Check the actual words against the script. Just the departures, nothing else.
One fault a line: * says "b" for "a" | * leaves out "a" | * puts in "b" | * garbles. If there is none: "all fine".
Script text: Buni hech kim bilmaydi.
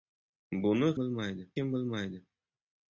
* says "bilmaydi" for "hech"